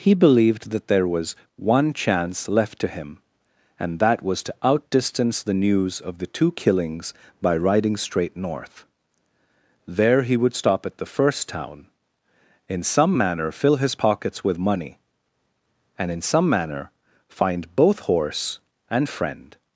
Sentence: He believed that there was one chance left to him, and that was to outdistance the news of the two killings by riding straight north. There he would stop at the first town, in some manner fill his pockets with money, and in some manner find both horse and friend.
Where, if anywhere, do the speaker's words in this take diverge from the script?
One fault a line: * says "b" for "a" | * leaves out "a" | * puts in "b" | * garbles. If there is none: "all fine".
all fine